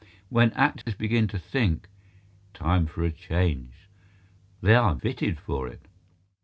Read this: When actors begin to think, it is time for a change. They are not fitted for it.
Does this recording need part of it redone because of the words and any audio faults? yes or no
yes